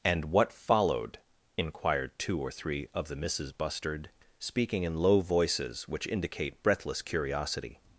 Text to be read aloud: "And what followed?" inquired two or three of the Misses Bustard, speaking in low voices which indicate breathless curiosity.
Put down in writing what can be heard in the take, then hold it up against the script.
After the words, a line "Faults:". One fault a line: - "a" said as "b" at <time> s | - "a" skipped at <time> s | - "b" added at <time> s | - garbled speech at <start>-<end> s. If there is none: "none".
"And what followed?" inquired two or three of the Misses Bustard, speaking in low voices which indicate breathless curiosity.
Faults:
none